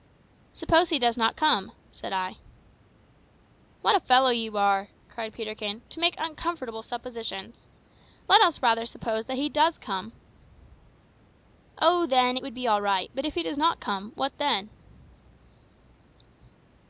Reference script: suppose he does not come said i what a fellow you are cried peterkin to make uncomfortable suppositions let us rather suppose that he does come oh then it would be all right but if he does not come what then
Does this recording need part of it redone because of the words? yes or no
no